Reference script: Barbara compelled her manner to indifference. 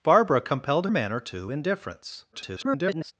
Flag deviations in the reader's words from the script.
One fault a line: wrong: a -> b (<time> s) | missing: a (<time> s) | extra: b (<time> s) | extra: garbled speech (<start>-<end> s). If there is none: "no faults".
missing: her (0.9 s)
extra: garbled speech (2.3-3.1 s)